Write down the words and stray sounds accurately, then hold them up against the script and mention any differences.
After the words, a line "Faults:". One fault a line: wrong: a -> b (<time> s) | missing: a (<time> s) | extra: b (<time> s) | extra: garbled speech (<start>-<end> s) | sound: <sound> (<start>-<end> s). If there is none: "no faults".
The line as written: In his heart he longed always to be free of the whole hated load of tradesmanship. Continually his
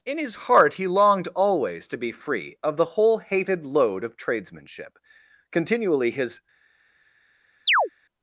In his heart he longed always to be free of the whole hated load of tradesmanship. Continually his
Faults:
sound: chirp (7.7-7.9 s)